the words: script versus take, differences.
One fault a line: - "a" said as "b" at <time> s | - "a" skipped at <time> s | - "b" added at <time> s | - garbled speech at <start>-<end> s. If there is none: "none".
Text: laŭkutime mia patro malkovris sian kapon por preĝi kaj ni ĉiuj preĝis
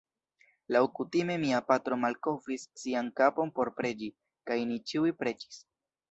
none